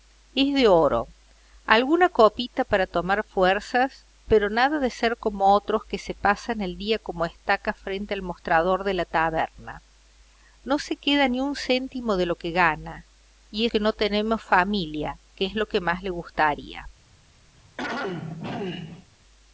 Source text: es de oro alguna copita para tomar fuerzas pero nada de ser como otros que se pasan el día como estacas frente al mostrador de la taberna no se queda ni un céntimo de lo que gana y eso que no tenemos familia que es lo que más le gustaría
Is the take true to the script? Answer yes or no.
no